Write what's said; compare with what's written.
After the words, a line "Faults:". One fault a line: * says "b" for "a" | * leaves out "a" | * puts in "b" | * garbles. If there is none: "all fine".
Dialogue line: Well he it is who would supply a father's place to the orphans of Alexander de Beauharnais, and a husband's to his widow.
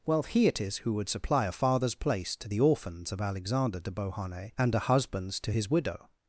Well he it is who would supply a father's place to the orphans of Alexander de Beauharnais, and a husband's to his widow.
Faults:
all fine